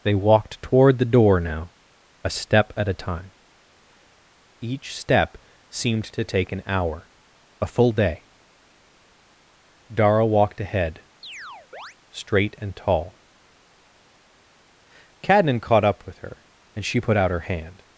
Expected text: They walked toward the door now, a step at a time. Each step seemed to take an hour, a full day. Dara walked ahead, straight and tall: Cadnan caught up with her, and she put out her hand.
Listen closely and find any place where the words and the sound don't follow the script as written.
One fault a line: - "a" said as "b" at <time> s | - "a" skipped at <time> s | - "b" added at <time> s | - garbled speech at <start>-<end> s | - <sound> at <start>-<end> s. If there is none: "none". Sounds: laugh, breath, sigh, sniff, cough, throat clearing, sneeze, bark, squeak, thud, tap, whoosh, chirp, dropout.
- chirp at 11.2-12.0 s